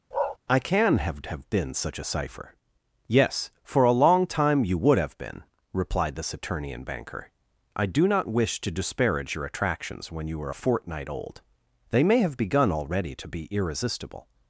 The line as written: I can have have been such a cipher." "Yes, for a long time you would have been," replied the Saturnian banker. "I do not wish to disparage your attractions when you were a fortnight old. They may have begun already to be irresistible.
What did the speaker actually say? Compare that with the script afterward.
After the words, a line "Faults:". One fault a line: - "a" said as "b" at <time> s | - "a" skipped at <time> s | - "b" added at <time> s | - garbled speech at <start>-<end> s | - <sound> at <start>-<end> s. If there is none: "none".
I can have have been such a cipher." "Yes, for a long time you would have been," replied the Saturnian banker. "I do not wish to disparage your attractions when you were a fortnight old. They may have begun already to be irresistible.
Faults:
- bark at 0.1-0.4 s